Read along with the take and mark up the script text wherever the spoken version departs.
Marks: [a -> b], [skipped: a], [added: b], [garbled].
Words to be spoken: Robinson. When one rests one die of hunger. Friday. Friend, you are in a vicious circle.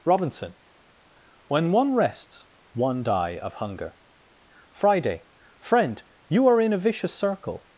Robinson. When one rests one die of hunger. Friday. Friend, you are in a vicious circle.